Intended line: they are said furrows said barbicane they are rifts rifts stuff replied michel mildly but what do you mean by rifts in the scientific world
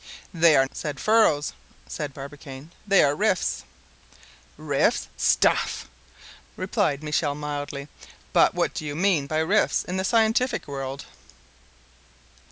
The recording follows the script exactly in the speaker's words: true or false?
true